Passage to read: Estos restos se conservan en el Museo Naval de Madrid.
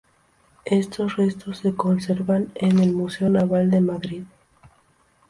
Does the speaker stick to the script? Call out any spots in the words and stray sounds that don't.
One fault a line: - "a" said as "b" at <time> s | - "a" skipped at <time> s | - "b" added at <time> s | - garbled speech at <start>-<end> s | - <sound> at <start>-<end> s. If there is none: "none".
none